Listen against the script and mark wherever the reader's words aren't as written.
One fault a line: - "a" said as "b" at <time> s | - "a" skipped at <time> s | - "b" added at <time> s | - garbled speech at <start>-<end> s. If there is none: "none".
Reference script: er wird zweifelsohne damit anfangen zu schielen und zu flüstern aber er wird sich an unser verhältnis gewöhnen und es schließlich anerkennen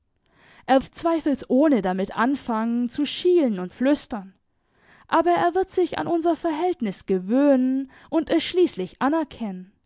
- "wird" skipped at 0.8 s
- "zu" skipped at 3.7 s